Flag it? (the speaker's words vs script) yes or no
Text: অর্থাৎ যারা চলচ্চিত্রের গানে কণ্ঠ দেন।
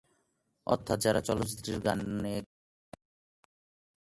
no